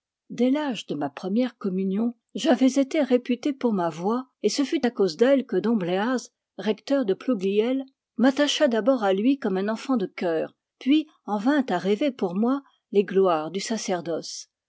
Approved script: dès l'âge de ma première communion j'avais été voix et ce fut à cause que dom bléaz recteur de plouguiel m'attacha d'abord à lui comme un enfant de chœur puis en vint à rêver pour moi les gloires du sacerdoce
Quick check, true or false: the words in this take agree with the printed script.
false